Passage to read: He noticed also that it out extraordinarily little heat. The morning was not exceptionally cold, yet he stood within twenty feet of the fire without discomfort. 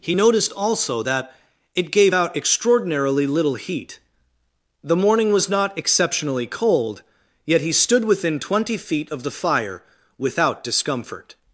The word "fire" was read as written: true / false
true